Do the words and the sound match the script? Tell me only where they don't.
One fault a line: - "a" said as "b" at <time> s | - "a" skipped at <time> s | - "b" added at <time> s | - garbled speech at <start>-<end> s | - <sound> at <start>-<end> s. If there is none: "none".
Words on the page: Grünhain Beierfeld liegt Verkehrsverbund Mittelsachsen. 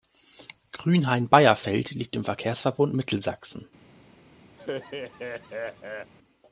- "im" added at 2.1 s
- laugh at 4.6-6.1 s